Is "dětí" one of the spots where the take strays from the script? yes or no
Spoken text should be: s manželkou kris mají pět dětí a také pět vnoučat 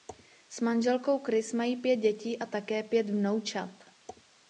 no